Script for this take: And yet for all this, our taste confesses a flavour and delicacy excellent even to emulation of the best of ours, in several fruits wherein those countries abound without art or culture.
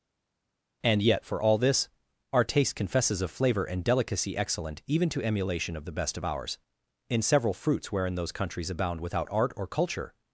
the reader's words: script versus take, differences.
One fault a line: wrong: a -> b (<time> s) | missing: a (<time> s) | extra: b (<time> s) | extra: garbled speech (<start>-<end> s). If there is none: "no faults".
wrong: a flavour -> of flavor (3.2 s)